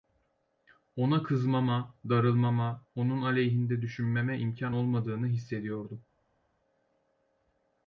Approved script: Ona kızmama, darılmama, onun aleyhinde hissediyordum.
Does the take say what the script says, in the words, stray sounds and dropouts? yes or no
no